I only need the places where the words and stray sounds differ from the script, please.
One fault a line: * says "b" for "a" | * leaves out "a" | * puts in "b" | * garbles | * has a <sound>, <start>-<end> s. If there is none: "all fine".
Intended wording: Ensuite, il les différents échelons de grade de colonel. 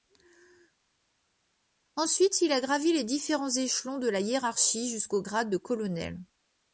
* puts in "a gravi"
* puts in "la hiérarchie jusqu'au"